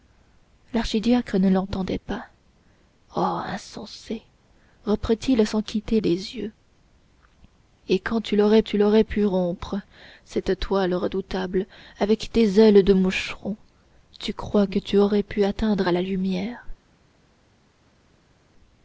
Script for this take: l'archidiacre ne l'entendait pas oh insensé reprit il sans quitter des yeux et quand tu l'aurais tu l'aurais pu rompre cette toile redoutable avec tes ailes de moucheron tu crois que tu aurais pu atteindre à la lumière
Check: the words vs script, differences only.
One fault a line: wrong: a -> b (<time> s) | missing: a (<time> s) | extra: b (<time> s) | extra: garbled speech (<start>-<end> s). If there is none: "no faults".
no faults